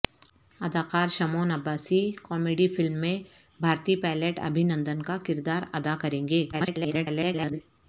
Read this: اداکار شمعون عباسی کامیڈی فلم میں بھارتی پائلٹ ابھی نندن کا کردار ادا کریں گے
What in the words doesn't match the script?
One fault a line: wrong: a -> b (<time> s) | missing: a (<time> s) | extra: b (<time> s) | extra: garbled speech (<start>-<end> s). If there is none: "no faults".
extra: garbled speech (6.5-7.6 s)